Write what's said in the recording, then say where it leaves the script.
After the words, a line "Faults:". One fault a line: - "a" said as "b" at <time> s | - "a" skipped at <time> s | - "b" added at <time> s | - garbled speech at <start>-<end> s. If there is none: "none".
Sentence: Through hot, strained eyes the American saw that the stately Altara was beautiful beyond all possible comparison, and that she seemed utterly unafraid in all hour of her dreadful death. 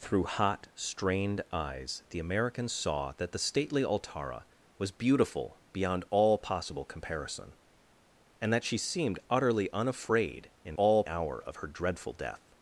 Through hot, strained eyes the American saw that the stately Altara was beautiful beyond all possible comparison, and that she seemed utterly unafraid in all hour of her dreadful death.
Faults:
none